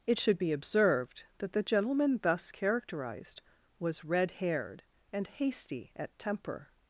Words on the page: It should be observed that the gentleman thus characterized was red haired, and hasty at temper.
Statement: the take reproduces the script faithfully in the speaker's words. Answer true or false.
true